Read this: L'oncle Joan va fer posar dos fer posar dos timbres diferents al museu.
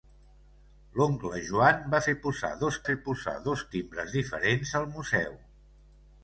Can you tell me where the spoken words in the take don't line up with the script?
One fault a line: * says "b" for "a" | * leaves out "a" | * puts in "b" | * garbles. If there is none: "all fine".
all fine